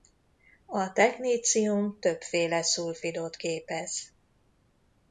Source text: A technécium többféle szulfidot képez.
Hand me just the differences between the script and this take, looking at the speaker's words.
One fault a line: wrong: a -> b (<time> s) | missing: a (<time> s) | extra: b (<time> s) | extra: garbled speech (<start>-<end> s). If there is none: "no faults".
no faults